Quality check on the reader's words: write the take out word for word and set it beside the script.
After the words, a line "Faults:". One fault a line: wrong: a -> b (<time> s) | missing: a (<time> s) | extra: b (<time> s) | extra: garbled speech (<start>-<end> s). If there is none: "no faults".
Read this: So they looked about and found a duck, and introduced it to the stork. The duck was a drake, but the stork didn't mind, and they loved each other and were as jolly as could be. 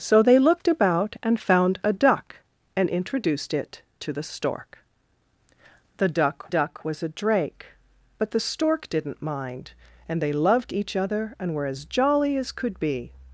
So they looked about and found a duck, and introduced it to the stork. The duck duck was a drake, but the stork didn't mind, and they loved each other and were as jolly as could be.
Faults:
extra: duck (6.5 s)